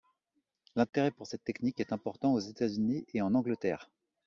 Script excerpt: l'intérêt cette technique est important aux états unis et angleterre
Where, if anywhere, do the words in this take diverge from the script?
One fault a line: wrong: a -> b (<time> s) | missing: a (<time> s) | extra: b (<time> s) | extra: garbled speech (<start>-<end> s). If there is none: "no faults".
extra: pour (1.1 s)
extra: en (3.2 s)